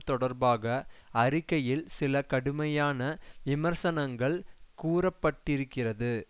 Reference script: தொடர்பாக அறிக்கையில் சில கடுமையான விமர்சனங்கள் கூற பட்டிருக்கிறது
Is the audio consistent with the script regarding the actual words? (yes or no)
yes